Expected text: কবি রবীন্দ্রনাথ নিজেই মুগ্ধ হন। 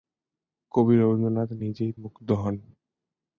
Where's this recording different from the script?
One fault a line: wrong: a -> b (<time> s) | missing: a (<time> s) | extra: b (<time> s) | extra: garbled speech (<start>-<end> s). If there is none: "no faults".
no faults